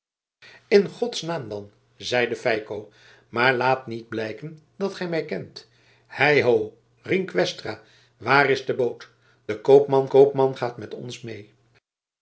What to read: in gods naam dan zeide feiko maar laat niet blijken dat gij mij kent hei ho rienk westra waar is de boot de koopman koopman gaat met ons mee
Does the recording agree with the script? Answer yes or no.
yes